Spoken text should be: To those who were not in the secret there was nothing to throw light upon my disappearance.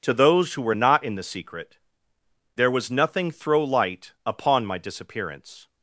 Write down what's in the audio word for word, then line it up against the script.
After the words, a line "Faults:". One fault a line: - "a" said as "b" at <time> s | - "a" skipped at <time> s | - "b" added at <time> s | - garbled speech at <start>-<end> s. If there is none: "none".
To those who were not in the secret there was nothing throw light upon my disappearance.
Faults:
- "to" skipped at 3.3 s